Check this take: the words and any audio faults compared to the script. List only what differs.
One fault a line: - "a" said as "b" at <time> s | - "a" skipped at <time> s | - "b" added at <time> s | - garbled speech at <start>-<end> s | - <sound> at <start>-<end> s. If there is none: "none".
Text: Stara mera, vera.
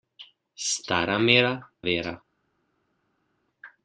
none